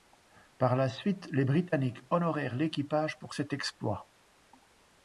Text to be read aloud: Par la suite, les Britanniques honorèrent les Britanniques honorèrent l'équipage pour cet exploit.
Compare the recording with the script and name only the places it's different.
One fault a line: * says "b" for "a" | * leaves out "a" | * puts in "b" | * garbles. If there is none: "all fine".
* leaves out "les Britanniques honorèrent"